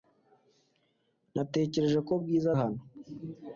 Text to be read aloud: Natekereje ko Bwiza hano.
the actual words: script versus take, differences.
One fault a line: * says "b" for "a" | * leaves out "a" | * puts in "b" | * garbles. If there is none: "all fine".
all fine